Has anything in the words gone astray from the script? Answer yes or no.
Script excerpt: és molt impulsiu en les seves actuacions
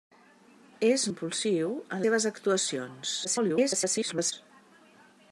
yes